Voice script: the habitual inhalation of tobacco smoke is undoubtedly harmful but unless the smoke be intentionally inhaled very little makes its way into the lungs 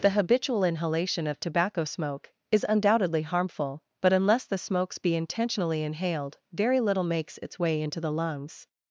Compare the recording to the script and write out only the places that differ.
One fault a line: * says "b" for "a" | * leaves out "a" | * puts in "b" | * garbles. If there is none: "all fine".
* says "smokes" for "smoke"